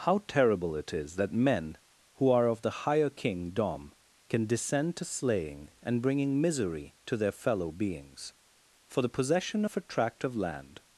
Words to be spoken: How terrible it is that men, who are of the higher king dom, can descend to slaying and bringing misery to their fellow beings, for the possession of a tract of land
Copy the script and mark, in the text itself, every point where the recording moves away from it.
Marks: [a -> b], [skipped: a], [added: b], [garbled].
How terrible it is that men, who are of the higher king dom, can descend to slaying and bringing misery to their fellow beings, for the possession of a tract of land